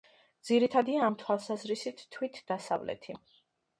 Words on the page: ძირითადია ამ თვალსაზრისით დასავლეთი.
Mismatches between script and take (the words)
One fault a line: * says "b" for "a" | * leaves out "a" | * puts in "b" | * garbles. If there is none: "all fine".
* puts in "თვით"